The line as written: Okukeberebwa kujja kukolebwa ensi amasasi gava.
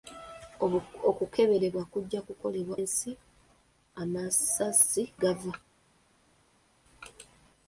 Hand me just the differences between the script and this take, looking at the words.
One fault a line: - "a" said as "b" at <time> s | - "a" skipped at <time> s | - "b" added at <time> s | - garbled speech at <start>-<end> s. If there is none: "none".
none